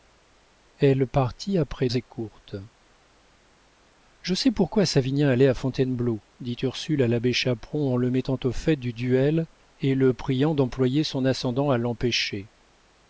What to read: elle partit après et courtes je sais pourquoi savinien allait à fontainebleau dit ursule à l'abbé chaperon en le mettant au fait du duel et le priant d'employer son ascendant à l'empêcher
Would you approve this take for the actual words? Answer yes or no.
yes